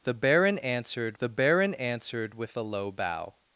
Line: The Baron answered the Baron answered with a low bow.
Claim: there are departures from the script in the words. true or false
false